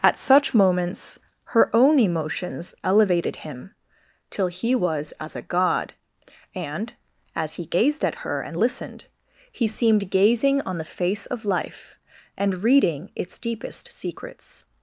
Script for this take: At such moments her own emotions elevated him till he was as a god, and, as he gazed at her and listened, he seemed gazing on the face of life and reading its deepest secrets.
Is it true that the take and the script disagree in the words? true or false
false